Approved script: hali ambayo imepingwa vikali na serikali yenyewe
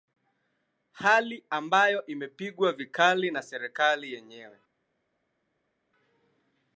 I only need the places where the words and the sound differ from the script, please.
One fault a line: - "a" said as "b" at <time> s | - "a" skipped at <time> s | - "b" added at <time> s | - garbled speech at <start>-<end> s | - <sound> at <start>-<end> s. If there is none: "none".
none